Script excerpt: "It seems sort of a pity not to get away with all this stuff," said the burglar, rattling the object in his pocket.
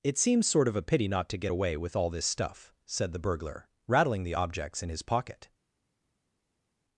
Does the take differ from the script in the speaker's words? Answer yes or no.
yes